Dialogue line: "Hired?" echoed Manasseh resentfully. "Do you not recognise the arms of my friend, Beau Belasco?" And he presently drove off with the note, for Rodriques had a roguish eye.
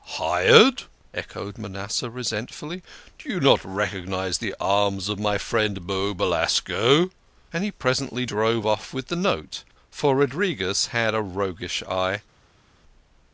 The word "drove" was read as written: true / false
true